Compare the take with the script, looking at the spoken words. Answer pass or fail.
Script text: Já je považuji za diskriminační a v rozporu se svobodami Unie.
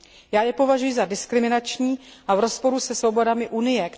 pass